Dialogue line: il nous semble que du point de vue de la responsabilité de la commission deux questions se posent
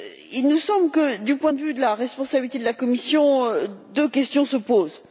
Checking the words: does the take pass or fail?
pass